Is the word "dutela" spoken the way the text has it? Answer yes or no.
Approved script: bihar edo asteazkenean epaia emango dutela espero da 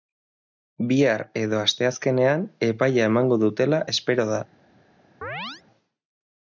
yes